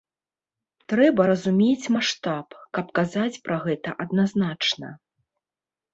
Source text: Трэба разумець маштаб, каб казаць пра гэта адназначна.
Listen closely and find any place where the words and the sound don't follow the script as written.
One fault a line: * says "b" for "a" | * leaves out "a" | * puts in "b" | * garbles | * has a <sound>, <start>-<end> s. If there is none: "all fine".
all fine